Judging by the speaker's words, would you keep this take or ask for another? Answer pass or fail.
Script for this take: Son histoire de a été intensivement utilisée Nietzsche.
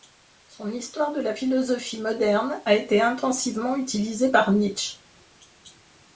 fail